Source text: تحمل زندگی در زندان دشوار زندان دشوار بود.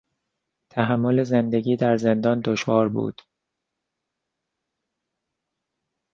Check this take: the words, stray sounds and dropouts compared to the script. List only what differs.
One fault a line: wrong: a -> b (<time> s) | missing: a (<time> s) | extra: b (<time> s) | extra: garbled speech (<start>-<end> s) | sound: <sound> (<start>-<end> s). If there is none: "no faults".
missing: زندان دشوار (2.9 s)